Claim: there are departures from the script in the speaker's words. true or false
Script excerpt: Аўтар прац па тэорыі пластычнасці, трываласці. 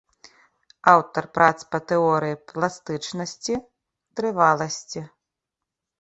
false